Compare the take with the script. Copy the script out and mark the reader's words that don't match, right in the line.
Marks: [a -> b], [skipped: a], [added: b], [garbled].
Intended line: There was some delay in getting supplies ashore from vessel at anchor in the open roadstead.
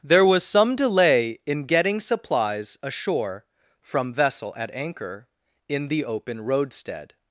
There was some delay in getting supplies ashore from vessel at anchor in the open roadstead.